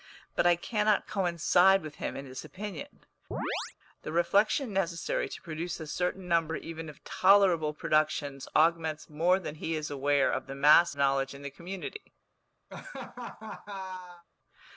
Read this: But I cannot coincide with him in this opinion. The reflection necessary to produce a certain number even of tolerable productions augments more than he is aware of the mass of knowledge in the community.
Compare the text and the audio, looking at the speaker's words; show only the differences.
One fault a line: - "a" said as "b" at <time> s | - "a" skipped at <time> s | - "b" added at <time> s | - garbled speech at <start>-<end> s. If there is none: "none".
- "of" skipped at 10.9 s